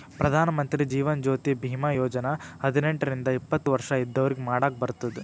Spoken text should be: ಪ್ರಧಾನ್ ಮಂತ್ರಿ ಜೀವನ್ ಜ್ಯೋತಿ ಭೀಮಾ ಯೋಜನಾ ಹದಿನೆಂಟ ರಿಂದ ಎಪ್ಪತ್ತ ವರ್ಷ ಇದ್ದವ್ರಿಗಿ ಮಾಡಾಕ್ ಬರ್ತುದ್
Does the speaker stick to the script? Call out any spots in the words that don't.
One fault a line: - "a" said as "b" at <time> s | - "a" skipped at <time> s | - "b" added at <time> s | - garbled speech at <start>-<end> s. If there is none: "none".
none